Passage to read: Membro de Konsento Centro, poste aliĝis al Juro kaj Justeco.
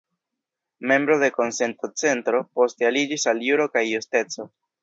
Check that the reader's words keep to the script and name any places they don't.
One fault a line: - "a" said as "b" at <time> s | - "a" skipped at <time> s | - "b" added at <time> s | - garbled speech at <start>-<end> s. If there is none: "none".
none